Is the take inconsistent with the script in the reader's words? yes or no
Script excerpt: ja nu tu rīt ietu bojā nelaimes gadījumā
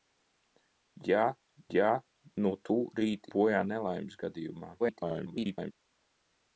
yes